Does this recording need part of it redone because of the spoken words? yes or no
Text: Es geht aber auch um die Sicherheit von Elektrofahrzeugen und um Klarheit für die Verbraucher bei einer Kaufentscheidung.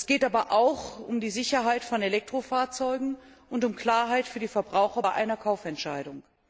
no